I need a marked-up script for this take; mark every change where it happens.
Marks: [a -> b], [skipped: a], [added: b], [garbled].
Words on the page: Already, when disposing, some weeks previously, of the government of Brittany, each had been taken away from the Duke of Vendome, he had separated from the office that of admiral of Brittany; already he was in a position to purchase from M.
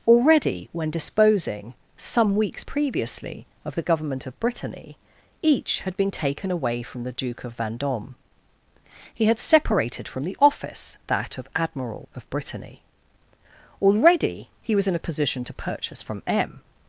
Already, when disposing, some weeks previously, of the government of Brittany, each had been taken away from the Duke of Vendome, he had separated from the office that of admiral of Brittany; already he was in a position to purchase from M.